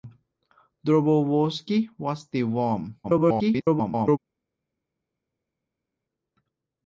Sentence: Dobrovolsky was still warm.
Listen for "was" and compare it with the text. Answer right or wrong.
right